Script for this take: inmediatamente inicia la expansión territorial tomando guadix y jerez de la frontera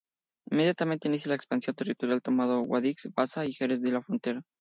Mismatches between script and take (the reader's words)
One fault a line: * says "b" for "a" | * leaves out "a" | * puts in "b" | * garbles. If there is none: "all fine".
* puts in "baza"